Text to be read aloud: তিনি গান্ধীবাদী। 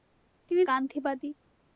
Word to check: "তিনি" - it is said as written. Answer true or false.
true